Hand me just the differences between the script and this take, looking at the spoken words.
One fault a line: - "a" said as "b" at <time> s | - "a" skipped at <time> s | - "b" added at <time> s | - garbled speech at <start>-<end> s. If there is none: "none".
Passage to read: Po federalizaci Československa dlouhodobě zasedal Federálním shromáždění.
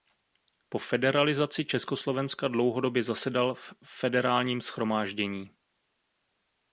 - "v" added at 3.5 s